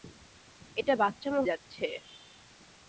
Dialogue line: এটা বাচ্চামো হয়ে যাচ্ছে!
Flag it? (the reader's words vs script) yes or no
yes